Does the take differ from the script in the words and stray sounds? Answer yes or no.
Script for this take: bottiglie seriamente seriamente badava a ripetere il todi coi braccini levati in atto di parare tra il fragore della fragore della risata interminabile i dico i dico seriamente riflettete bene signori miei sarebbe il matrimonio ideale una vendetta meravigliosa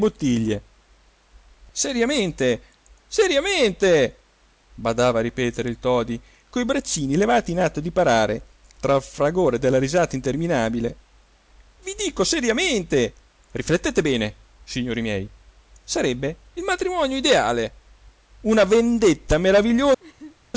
yes